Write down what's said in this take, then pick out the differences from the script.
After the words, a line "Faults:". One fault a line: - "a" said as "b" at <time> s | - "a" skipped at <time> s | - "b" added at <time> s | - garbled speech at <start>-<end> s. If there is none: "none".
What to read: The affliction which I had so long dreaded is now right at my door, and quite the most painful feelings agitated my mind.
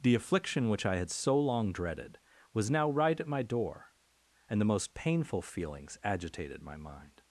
The affliction which I had so long dreaded was now right at my door, and the most painful feelings agitated my mind.
Faults:
- "is" said as "was" at 2.5 s
- "quite" skipped at 4.6 s